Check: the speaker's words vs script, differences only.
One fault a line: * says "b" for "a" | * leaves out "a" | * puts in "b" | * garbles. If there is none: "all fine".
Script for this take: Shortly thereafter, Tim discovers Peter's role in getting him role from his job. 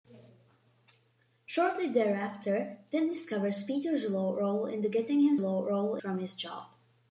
all fine